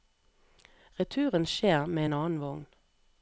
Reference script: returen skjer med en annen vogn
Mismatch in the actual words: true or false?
false